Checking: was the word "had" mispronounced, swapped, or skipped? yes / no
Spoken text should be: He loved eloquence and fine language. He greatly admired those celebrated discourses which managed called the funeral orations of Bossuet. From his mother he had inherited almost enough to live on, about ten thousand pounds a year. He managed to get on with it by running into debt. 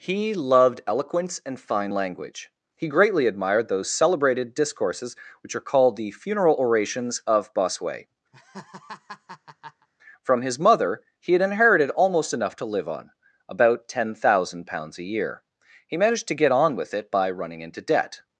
no